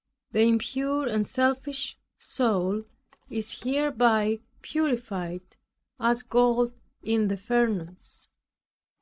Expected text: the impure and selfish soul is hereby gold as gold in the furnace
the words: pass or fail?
fail